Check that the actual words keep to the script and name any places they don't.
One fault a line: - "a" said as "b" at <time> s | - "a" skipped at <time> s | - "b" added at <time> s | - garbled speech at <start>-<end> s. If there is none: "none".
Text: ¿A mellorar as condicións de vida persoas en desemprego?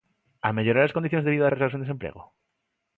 none